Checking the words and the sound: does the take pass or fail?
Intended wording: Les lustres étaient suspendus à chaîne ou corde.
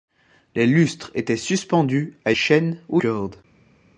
pass